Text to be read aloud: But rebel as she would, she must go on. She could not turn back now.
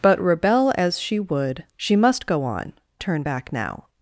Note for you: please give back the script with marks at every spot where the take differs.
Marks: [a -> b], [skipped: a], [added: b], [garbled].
But rebel as she would, she must go on. [skipped: She could not] turn back now.